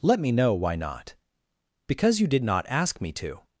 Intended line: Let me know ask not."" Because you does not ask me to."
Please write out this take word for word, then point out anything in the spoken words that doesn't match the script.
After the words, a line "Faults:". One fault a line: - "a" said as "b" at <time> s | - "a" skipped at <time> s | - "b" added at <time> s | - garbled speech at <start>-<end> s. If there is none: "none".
Let me know why not."" Because you did not ask me to."
Faults:
- "ask" said as "why" at 0.5 s
- "does" said as "did" at 2.3 s